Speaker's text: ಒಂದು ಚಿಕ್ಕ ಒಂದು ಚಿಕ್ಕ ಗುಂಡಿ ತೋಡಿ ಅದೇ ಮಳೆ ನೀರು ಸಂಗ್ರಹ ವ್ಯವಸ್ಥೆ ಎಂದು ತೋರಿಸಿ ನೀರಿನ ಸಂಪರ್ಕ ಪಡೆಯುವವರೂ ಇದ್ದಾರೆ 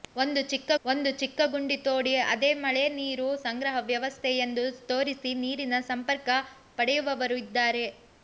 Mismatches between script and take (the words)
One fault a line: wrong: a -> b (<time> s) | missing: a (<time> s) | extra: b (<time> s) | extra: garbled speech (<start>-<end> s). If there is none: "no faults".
no faults